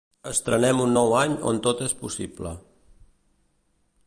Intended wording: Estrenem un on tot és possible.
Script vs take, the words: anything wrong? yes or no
yes